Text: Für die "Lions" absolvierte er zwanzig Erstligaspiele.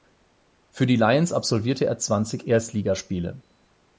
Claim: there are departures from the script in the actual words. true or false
false